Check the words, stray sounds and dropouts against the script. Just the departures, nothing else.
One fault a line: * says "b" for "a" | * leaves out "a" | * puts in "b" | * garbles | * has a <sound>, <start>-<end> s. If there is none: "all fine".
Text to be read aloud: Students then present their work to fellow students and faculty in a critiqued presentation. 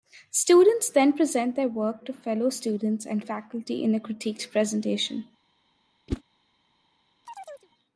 * has a whoosh, 6.1-6.2 s
* has a chirp, 7.3-7.7 s